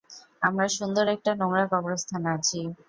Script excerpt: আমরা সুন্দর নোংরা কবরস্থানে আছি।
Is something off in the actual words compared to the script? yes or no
yes